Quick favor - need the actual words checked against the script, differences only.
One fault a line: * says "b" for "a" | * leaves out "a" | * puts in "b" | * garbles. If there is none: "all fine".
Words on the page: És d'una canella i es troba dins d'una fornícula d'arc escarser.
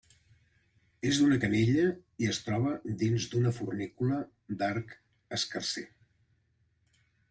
all fine